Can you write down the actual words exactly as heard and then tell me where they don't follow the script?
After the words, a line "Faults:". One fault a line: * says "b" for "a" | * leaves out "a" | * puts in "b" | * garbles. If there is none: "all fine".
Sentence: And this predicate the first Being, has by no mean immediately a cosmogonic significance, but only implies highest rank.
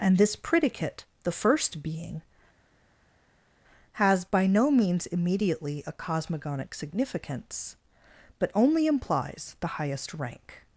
And this predicate the first Being, has by no means immediately a cosmogonic significance, but only implies the highest rank.
Faults:
* says "means" for "mean"
* puts in "the"